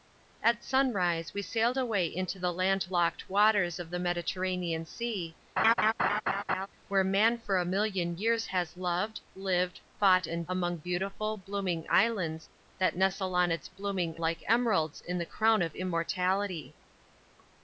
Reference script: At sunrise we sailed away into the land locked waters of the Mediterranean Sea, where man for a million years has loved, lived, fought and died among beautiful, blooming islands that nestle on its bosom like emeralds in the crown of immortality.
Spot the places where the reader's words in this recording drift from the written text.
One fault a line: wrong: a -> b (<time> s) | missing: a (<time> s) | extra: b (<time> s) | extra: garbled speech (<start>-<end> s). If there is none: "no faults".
missing: died (10.5 s)
wrong: bosom -> blooming (13.7 s)